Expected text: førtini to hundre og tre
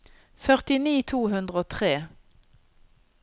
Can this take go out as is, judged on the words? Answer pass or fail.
pass